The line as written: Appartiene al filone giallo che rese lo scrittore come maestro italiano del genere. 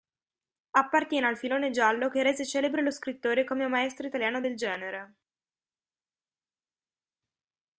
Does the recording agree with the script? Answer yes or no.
no